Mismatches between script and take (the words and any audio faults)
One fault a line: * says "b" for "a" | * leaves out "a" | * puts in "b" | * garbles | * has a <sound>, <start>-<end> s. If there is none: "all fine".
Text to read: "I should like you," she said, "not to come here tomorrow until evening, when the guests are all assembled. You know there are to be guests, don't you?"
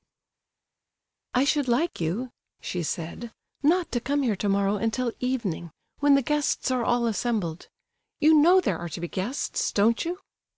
all fine